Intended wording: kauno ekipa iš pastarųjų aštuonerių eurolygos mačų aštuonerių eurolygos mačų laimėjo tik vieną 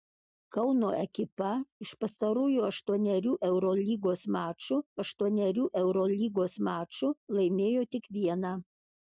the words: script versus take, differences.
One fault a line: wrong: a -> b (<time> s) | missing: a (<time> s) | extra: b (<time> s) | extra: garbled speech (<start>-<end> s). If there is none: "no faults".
no faults